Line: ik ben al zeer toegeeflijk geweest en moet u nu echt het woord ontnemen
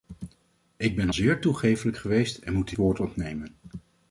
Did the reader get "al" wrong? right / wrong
wrong